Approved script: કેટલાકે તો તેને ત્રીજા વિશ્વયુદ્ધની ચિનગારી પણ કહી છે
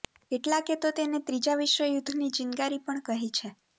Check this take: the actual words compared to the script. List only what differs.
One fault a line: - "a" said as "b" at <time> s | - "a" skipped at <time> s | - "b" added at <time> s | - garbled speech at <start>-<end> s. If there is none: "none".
none